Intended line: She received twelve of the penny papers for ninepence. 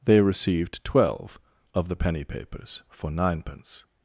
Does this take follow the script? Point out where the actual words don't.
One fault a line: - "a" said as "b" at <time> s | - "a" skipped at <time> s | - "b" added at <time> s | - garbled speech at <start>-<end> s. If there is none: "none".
- "She" said as "They" at 0.0 s